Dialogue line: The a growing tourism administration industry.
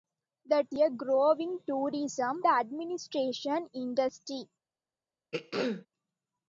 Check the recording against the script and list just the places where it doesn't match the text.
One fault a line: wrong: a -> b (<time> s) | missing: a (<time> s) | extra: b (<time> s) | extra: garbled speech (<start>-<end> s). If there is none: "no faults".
no faults